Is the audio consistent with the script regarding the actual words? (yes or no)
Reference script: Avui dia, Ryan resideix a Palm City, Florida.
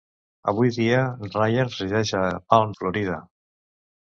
no